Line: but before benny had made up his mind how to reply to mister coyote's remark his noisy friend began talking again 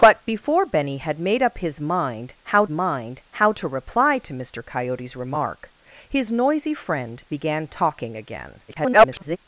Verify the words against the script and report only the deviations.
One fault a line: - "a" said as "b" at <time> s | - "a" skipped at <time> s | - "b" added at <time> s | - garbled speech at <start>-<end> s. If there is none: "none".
- "mind how" added at 2.7 s
- garbled speech at 8.7-9.4 s